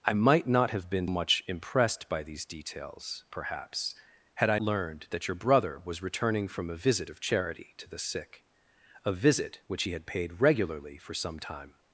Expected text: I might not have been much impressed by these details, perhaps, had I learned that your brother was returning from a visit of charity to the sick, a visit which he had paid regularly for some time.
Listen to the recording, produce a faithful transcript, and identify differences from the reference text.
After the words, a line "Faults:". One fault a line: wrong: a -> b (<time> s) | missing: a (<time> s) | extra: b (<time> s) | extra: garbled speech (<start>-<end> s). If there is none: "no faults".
I might not have been much impressed by these details, perhaps, had I learned that your brother was returning from a visit of charity to the sick, a visit which he had paid regularly for some time.
Faults:
no faults